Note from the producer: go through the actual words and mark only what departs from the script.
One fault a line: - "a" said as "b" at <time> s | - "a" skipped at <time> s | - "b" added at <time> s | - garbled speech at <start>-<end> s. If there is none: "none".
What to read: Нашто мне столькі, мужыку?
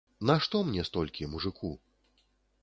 none